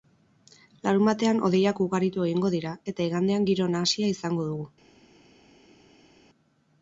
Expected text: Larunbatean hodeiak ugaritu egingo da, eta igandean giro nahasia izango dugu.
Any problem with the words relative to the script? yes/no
yes